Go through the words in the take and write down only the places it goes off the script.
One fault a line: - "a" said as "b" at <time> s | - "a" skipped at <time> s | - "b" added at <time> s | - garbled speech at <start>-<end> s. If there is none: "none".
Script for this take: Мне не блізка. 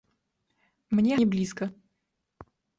none